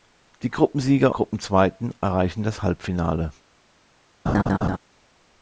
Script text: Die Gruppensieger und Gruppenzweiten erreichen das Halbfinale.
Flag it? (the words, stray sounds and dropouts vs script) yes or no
yes